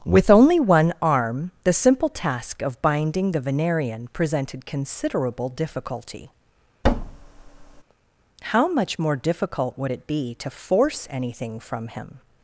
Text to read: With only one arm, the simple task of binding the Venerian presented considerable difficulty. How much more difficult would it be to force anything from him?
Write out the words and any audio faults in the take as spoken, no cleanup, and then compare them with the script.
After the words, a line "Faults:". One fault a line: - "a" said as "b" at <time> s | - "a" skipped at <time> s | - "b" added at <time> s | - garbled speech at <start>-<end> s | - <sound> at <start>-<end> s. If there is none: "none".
With only one arm, the simple task of binding the Venerian presented considerable difficulty. How much more difficult would it be to force anything from him?
Faults:
- thud at 6.8-7.8 s